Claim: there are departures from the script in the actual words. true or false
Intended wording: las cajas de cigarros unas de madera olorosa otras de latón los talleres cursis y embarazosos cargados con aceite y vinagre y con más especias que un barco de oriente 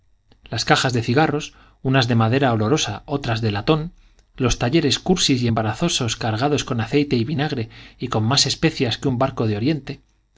false